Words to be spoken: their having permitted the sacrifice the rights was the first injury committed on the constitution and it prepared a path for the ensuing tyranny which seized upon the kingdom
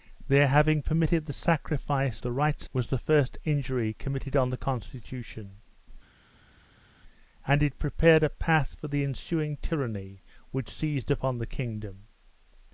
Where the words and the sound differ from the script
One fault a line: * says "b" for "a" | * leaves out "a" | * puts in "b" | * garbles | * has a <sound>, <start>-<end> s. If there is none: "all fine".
all fine